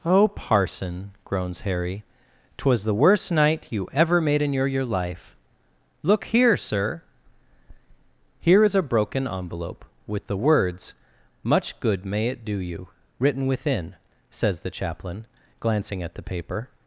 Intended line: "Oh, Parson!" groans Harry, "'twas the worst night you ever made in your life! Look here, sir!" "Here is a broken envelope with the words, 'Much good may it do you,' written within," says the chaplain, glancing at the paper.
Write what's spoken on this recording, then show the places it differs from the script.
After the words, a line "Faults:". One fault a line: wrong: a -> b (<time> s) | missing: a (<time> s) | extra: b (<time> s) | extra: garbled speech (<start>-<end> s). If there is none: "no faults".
"Oh, Parson!" groans Harry, "'twas the worst night you ever made in your your life! Look here, sir!" "Here is a broken envelope with the words, 'Much good may it do you,' written within," says the chaplain, glancing at the paper.
Faults:
extra: your (4.7 s)